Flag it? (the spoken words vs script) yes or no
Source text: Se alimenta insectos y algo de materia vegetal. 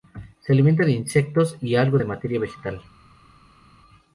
yes